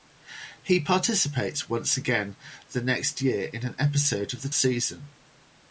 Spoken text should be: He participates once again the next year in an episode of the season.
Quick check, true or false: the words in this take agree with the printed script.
true